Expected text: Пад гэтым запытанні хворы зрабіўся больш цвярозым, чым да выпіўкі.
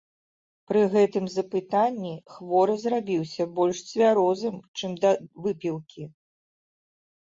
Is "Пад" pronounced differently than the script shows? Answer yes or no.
yes